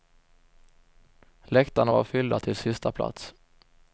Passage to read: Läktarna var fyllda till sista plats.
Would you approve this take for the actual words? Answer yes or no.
yes